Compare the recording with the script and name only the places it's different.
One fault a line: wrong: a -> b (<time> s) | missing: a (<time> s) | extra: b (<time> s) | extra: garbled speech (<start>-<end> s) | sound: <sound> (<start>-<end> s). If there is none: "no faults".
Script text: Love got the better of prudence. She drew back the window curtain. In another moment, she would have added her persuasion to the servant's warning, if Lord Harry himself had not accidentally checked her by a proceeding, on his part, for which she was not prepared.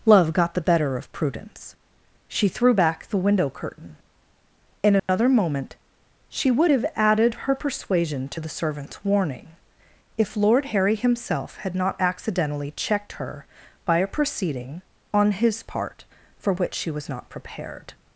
wrong: drew -> threw (2.5 s)
sound: dropout (5.0-5.1 s)